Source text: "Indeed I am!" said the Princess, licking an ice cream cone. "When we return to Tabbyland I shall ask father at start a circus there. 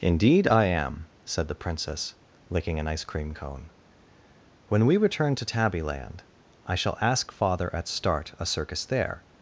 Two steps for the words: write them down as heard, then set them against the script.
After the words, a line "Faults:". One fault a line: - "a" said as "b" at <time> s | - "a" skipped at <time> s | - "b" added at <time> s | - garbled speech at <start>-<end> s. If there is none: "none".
"Indeed I am!" said the Princess, licking an ice cream cone. "When we return to Tabbyland I shall ask father at start a circus there.
Faults:
none